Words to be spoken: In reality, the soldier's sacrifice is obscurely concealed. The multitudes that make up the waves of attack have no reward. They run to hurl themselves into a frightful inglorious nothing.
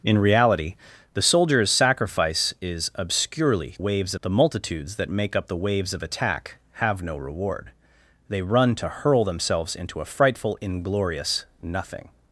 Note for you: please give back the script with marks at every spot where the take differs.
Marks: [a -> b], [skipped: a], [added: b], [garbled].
In reality, the soldier's sacrifice is obscurely [concealed. -> waves] The multitudes that make up the waves of attack have no reward. They run to hurl themselves into a frightful inglorious nothing.